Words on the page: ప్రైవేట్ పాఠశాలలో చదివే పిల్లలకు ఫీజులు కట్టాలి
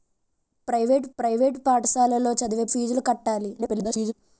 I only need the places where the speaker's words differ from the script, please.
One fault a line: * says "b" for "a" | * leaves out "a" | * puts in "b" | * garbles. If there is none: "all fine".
* puts in "ప్రైవేట్"
* leaves out "పిల్లలకు"
* garbles